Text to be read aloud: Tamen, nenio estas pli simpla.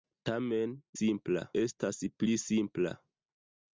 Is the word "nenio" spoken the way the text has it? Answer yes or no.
no